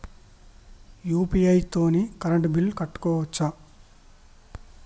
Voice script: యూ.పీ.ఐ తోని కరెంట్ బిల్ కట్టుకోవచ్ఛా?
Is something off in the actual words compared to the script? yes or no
no